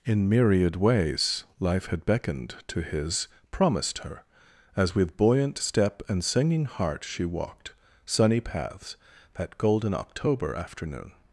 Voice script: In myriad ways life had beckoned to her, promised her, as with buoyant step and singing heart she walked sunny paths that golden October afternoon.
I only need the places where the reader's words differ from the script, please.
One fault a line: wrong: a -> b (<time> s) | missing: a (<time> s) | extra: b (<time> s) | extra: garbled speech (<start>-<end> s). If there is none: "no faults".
wrong: her -> his (2.8 s)